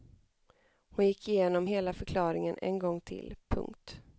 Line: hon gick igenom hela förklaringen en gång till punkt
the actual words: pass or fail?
pass